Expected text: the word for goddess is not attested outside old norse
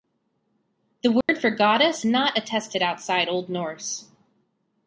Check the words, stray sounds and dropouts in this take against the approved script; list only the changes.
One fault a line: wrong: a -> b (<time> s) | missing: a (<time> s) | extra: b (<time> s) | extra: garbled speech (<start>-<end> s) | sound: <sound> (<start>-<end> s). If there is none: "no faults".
sound: dropout (1.2-1.3 s)
missing: is (2.0 s)